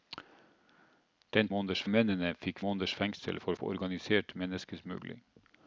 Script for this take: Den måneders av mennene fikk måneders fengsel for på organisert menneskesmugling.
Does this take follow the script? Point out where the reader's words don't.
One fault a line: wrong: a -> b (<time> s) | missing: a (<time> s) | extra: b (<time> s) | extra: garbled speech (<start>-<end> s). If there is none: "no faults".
no faults